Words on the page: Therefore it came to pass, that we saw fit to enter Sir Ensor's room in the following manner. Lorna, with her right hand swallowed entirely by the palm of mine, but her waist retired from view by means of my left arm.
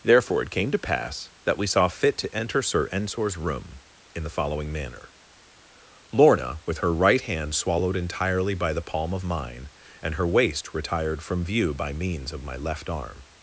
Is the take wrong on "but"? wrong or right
wrong